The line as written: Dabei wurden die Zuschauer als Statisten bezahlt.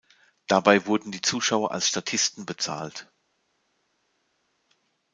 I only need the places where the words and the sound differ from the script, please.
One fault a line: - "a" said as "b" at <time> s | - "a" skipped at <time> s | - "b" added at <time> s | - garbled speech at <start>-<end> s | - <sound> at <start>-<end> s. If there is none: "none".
none